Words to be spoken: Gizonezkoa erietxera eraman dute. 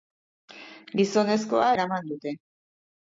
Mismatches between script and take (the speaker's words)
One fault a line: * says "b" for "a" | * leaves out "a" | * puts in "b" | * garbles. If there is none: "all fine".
* leaves out "erietxera"